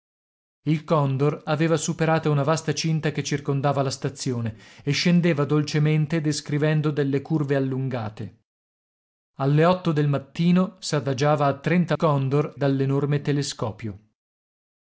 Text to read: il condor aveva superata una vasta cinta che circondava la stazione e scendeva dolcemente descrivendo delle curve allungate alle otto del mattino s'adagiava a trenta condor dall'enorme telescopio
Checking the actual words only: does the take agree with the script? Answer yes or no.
yes